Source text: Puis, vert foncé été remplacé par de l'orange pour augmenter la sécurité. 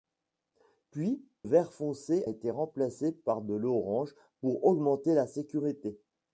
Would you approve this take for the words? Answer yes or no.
yes